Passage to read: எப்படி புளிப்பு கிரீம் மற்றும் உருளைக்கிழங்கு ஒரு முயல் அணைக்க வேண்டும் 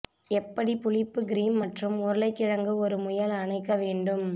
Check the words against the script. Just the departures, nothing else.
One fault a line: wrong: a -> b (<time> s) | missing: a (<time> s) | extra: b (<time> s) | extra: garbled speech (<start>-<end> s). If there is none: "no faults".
no faults